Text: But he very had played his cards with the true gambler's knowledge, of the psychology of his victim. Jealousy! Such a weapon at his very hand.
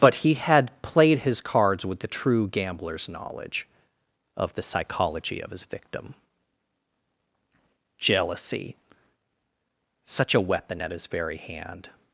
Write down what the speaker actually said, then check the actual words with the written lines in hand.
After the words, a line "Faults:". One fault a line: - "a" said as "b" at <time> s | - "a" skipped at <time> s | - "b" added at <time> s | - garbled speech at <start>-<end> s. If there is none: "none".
But he had played his cards with the true gambler's knowledge, of the psychology of his victim. Jealousy! Such a weapon at his very hand.
Faults:
- "very" skipped at 0.3 s